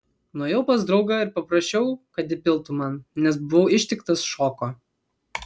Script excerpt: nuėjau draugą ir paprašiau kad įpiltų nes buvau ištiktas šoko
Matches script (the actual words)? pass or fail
fail